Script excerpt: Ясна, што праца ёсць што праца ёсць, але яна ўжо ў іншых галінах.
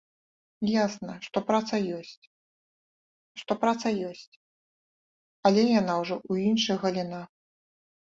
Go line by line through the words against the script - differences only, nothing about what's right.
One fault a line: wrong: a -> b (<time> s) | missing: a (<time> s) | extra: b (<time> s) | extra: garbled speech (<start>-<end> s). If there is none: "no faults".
no faults